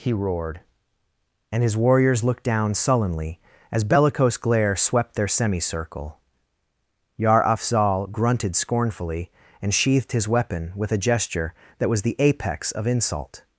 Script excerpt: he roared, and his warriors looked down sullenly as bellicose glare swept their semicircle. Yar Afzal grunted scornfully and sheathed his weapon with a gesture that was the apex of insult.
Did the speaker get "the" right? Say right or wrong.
right